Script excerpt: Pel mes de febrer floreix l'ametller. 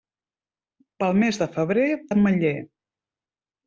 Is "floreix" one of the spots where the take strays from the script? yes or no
yes